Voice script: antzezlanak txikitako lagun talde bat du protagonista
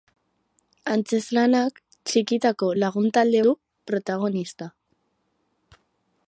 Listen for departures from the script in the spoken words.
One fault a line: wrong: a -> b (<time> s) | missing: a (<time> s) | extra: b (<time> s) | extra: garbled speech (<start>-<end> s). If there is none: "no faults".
missing: bat (3.4 s)